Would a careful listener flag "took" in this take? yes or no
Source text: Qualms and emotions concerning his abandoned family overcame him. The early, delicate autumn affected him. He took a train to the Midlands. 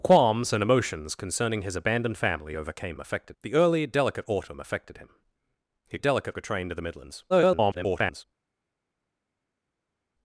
yes